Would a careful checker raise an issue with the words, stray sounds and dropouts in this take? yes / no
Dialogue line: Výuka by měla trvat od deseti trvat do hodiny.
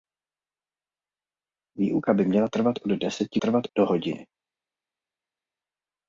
no